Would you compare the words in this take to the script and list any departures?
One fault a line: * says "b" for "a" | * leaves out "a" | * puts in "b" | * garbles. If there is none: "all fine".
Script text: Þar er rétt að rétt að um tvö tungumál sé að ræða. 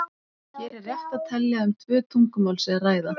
* says "Hér" for "Þar"
* says "telja" for "rétt"